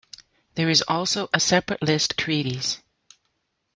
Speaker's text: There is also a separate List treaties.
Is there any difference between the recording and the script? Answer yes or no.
no